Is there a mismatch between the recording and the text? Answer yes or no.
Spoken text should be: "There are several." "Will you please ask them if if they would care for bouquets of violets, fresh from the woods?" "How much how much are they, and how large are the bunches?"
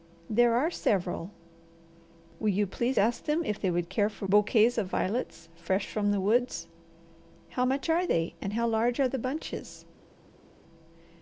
yes